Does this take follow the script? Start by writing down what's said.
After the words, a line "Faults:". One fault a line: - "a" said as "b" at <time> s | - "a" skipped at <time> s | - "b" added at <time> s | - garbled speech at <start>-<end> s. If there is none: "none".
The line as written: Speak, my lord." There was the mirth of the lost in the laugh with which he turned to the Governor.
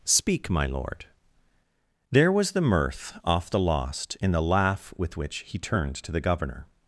Speak, my lord." There was the mirth off the lost in the laugh with which he turned to the Governor.
Faults:
- "of" said as "off" at 3.2 s